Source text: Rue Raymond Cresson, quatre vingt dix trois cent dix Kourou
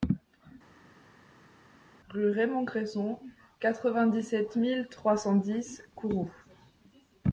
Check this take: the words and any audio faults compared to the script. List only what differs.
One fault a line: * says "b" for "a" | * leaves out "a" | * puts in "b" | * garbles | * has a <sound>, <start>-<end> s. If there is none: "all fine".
* puts in "sept mille"